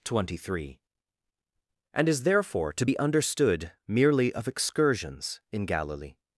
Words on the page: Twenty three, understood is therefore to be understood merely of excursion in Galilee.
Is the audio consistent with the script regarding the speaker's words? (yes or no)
no